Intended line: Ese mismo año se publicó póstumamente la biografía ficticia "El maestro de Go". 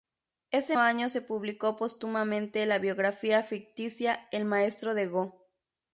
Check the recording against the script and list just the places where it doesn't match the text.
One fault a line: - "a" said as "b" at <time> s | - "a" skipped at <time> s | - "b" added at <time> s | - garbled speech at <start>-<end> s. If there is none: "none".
- "mismo" skipped at 0.8 s